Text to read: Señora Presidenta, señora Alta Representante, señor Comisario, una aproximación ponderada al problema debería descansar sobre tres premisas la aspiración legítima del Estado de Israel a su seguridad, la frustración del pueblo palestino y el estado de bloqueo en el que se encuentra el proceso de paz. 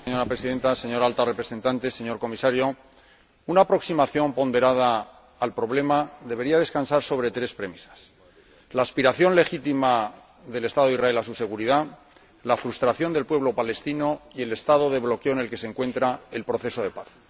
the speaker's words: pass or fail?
pass